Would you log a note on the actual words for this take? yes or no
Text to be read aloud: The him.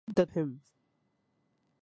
no